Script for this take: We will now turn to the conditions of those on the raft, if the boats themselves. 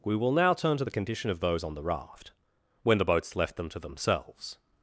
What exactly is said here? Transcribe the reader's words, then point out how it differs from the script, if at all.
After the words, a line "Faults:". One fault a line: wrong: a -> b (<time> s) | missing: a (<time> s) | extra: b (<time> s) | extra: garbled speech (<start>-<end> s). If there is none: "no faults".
We will now turn to the condition of those on the raft, when the boats left them to themselves.
Faults:
wrong: conditions -> condition (0.9 s)
wrong: if -> when (2.8 s)
extra: left them to (3.3 s)